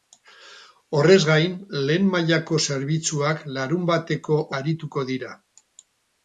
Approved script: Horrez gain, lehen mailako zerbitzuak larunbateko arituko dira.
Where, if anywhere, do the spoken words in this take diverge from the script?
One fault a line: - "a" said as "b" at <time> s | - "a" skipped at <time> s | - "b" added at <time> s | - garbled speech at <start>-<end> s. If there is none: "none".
none